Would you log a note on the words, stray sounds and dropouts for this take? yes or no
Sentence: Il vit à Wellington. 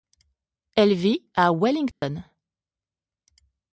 yes